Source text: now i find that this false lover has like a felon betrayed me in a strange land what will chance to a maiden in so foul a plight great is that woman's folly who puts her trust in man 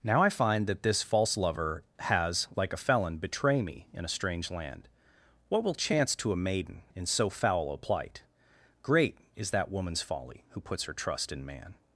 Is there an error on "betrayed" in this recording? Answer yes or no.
yes